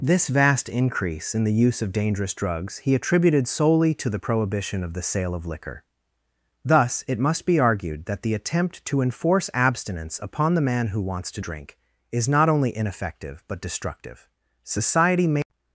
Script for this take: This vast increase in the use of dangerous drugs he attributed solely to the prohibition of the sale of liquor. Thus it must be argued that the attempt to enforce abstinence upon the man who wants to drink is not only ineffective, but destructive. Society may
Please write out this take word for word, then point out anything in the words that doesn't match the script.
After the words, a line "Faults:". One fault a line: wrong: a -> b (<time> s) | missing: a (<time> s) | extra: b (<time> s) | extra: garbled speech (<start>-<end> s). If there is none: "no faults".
This vast increase in the use of dangerous drugs he attributed solely to the prohibition of the sale of liquor. Thus it must be argued that the attempt to enforce abstinence upon the man who wants to drink is not only ineffective, but destructive. Society may
Faults:
no faults